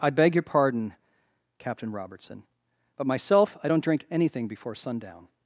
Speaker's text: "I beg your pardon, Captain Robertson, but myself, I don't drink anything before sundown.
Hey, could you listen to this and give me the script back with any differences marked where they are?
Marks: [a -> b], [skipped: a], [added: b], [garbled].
"I beg your pardon, Captain Robertson, but myself, I don't drink anything before sundown.